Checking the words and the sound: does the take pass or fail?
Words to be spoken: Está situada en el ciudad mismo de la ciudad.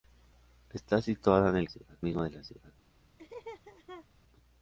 fail